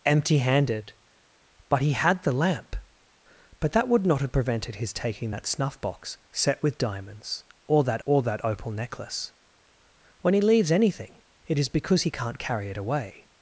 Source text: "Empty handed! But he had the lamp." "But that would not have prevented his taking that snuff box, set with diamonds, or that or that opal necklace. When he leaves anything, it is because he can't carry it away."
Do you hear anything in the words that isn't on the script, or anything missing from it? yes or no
no